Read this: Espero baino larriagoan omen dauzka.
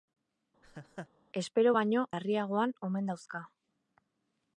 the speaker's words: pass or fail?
pass